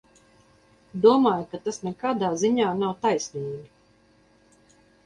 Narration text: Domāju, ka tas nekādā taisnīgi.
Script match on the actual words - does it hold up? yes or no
no